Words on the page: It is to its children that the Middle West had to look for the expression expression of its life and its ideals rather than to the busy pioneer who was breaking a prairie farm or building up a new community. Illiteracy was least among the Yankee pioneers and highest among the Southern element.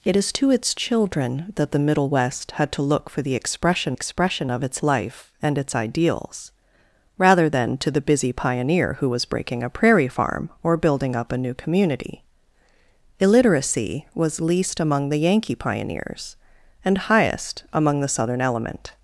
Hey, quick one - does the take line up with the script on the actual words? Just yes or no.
yes